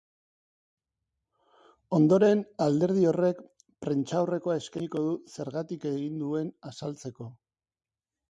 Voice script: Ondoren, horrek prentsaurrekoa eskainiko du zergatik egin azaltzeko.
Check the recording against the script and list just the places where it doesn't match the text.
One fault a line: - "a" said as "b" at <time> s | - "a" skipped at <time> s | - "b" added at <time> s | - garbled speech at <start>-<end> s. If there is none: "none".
- "alderdi" added at 2.7 s
- "duen" added at 6.2 s